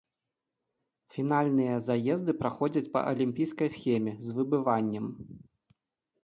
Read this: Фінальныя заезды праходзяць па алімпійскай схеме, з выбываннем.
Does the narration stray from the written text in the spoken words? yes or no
no